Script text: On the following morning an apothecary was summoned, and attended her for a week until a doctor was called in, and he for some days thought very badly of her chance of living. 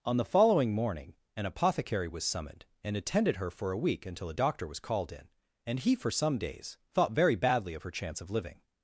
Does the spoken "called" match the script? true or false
true